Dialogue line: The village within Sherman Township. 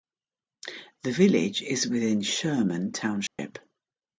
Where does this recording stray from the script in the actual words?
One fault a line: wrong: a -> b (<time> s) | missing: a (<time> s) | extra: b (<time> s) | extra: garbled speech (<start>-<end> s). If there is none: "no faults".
extra: is (1.6 s)